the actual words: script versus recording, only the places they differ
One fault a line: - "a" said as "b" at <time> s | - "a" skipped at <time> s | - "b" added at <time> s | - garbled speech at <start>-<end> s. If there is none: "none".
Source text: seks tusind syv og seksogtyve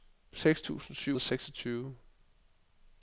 none